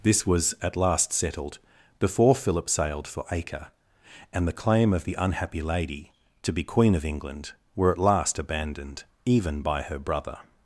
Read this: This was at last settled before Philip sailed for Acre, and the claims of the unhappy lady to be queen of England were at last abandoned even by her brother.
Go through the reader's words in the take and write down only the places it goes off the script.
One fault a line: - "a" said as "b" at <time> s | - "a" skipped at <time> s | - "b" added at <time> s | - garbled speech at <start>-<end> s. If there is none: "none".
- "claims" said as "claim" at 4.5 s